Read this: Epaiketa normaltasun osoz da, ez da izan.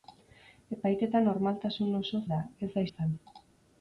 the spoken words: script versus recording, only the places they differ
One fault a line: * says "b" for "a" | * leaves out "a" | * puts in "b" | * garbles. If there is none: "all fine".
all fine